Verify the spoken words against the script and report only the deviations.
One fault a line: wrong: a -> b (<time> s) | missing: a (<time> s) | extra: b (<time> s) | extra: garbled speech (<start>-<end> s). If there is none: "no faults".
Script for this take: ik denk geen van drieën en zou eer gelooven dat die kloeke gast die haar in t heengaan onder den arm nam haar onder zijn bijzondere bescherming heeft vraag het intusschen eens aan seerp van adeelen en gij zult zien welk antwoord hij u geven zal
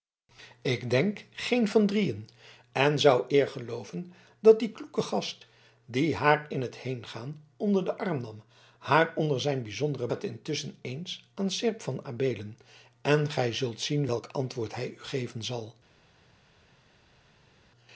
missing: bescherming heeft vraag (10.1 s)